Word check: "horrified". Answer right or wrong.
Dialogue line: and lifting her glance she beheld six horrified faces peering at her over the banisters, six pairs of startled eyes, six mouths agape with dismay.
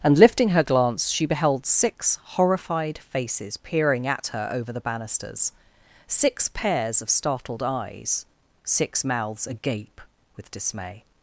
right